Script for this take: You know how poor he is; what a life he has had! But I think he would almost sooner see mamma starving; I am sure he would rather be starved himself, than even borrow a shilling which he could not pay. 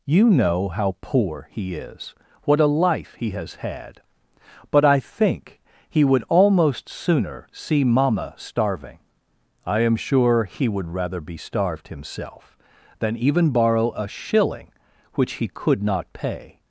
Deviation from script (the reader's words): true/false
false